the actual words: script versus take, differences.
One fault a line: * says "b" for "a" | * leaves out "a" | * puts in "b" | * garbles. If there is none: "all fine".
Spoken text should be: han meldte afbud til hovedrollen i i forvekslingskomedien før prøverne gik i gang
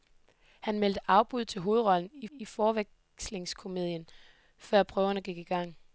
all fine